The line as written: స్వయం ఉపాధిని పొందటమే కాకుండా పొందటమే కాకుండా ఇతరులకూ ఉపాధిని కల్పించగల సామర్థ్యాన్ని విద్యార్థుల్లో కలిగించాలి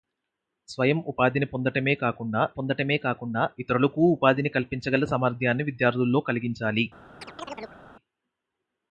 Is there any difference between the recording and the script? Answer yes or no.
no